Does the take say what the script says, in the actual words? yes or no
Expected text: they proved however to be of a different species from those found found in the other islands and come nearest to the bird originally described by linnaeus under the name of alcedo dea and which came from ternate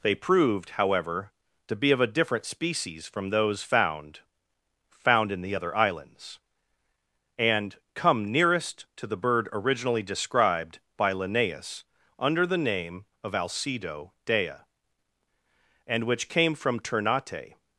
yes